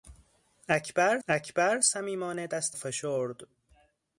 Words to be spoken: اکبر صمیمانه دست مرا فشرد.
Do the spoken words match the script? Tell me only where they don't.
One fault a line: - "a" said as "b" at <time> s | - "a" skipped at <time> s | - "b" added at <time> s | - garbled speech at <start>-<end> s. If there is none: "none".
- "اکبر" added at 1.3 s
- "مرا" skipped at 2.8 s